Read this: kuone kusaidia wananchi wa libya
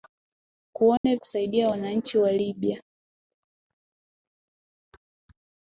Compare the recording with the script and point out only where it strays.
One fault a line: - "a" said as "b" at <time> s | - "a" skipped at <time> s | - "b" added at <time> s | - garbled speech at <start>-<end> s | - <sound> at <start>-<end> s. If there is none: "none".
- dropout at 1.0-1.0 s